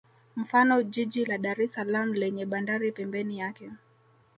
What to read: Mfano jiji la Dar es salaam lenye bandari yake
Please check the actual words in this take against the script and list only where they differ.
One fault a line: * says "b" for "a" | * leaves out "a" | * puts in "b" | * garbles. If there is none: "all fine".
* puts in "pembeni"